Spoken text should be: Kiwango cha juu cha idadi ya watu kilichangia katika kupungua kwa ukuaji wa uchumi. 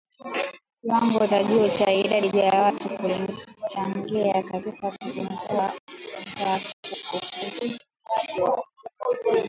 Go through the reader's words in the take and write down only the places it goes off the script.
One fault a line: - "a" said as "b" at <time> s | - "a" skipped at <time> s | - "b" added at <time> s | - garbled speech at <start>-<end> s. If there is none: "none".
none